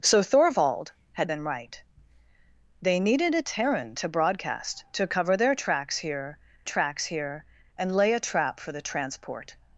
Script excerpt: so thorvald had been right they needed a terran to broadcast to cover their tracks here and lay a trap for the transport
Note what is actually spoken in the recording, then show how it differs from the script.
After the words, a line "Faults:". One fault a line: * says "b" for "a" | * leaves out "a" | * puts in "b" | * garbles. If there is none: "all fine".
so thorvald had been right they needed a terran to broadcast to cover their tracks here tracks here and lay a trap for the transport
Faults:
* puts in "tracks here"